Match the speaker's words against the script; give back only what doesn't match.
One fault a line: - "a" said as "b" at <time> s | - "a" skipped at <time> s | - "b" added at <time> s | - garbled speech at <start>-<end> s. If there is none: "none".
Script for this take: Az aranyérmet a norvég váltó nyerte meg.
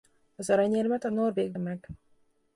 - "váltó nyerte" skipped at 1.5 s